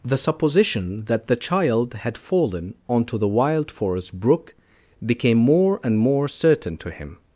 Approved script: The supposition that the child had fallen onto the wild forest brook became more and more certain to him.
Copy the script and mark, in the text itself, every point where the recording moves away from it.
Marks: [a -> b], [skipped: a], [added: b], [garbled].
The supposition that the child had fallen onto the wild forest brook became more and more certain to him.